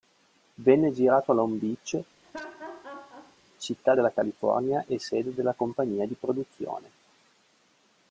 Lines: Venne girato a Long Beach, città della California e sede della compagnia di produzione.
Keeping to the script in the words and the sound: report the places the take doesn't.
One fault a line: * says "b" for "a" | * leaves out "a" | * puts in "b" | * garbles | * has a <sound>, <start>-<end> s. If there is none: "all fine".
* has a laugh, 2.2-3.4 s